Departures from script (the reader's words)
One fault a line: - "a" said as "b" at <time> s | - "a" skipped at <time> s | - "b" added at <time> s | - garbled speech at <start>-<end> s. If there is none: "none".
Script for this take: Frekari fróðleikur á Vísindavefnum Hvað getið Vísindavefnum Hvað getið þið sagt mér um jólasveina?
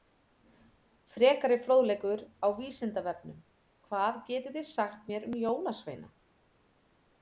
- "Vísindavefnum Hvað getið" skipped at 4.6 s